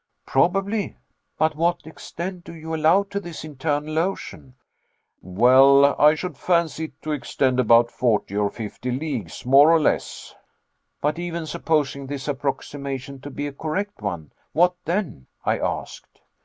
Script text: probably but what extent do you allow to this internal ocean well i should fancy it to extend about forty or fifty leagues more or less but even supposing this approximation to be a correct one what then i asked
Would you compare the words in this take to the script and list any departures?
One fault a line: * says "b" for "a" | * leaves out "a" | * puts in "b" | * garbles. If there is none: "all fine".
all fine